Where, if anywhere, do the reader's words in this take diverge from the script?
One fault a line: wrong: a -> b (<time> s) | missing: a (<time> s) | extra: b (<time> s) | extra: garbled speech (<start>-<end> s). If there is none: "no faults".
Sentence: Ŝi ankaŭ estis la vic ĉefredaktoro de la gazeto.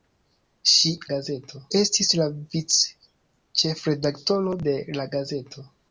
wrong: ankaŭ -> gazeto (1.1 s)